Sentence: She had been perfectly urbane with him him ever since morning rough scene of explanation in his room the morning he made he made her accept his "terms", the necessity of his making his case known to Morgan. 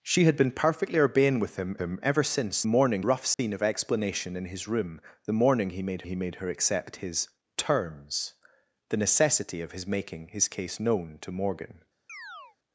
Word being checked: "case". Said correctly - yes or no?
yes